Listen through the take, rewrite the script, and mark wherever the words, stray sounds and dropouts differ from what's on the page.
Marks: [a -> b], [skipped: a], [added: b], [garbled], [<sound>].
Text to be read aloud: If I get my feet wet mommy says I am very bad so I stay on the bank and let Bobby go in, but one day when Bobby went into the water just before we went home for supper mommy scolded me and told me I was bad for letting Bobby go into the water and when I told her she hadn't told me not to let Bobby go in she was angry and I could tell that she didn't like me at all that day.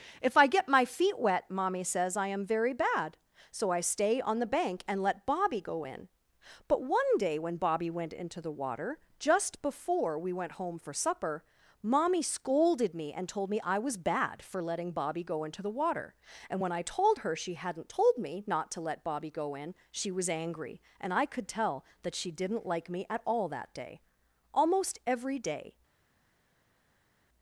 If I get my feet wet mommy says I am very bad so I stay on the bank and let Bobby go in, but one day when Bobby went into the water just before we went home for supper mommy scolded me and told me I was bad for letting Bobby go into the water and when I told her she hadn't told me not to let Bobby go in she was angry and I could tell that she didn't like me at all that day. [added: Almost every day]